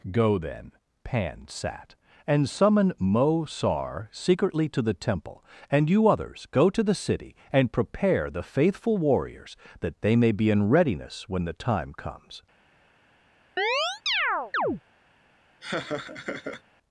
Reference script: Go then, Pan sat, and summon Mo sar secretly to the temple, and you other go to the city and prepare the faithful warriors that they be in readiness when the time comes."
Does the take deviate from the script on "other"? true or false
true